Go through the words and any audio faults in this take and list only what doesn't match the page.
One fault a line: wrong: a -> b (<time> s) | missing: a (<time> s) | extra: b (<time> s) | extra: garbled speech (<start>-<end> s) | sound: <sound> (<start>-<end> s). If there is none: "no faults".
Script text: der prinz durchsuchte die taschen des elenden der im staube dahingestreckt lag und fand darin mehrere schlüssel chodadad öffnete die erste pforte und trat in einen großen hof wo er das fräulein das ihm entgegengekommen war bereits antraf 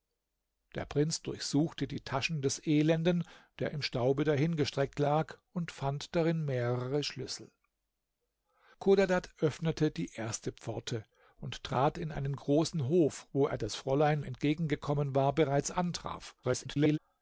missing: das ihm (14.2 s)
extra: garbled speech (16.4-17.0 s)